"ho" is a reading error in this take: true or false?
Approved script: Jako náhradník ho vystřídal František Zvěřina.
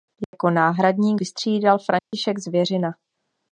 true